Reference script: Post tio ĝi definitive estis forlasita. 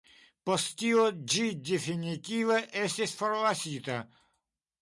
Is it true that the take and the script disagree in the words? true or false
false